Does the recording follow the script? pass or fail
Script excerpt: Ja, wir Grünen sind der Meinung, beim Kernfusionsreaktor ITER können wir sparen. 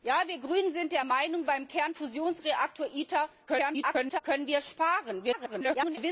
fail